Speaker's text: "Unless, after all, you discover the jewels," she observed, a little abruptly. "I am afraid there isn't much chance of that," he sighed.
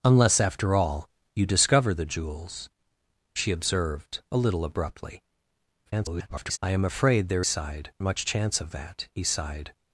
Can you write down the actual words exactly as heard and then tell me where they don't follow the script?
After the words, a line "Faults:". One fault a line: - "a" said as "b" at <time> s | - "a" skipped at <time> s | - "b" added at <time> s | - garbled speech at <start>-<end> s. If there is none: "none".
"Unless, after all, you discover the jewels," she observed, a little abruptly. [garbled] "I am afraid there sighed much chance of that," he sighed.
Faults:
- garbled speech at 5.9-6.6 s
- "isn't" said as "sighed" at 7.4 s